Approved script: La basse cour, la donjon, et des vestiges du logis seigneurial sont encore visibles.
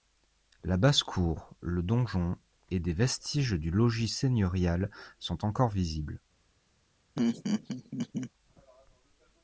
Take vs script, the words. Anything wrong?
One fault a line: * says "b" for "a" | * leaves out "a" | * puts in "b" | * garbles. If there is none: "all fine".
* says "le" for "la"